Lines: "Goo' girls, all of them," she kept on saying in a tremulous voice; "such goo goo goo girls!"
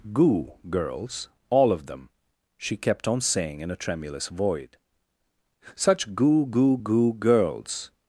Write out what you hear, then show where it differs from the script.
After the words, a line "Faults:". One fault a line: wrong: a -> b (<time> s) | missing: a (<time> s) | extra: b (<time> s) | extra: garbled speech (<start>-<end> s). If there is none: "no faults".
"Goo' girls, all of them," she kept on saying in a tremulous void; "such goo goo goo girls!"
Faults:
wrong: voice -> void (4.3 s)